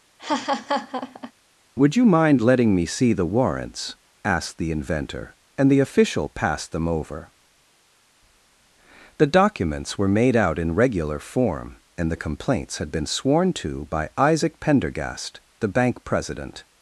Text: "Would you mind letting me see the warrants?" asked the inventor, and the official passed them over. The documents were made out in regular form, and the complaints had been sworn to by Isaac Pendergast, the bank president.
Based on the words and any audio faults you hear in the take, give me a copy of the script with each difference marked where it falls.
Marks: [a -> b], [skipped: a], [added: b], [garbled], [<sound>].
[laugh] "Would you mind letting me see the warrants?" asked the inventor, and the official passed them over. The documents were made out in regular form, and the complaints had been sworn to by Isaac Pendergast, the bank president.